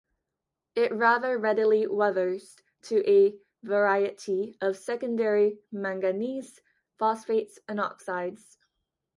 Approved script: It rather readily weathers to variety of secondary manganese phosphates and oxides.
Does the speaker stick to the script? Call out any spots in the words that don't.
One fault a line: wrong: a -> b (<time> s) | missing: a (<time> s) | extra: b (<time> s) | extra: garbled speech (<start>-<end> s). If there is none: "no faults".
extra: a (3.1 s)